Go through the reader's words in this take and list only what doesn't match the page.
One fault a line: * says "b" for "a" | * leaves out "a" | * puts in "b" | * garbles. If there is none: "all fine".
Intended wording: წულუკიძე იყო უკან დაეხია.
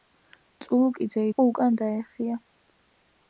all fine